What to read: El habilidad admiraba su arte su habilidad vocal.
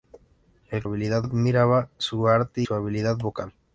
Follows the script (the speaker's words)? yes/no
yes